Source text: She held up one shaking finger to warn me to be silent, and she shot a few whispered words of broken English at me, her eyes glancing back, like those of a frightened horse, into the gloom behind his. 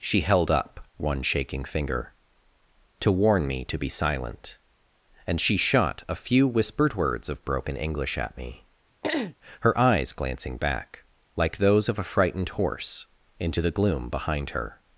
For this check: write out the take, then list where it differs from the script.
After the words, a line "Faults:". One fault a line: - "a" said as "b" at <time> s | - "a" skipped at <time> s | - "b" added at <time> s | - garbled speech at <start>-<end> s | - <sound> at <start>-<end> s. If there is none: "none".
She held up one shaking finger to warn me to be silent, and she shot a few whispered words of broken English at me, her eyes glancing back, like those of a frightened horse, into the gloom behind her.
Faults:
- throat clearing at 9.0-9.4 s
- "his" said as "her" at 14.5 s